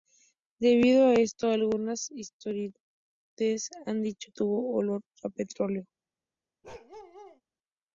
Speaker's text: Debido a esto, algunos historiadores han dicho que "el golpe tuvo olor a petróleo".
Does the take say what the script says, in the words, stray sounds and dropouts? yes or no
no